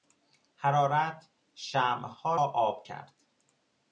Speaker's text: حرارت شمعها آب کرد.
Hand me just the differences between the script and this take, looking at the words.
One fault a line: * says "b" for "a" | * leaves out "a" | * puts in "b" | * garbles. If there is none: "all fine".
all fine